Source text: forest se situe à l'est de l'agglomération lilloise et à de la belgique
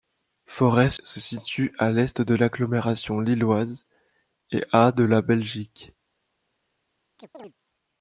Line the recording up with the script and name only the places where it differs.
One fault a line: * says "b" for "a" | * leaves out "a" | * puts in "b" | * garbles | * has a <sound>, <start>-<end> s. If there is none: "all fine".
* has a chirp, 7.2-7.5 s